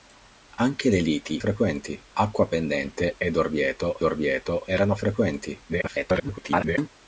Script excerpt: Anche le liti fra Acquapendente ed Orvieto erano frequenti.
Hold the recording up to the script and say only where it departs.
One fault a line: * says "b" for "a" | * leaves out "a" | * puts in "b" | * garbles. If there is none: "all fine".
* says "frequenti" for "fra"
* puts in "Orvieto"
* garbles